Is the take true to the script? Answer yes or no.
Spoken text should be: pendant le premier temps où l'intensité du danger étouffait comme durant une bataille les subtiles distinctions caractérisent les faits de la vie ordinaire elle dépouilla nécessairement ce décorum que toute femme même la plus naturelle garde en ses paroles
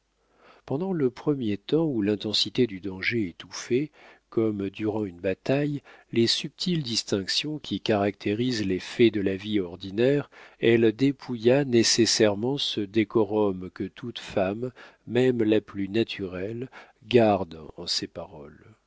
no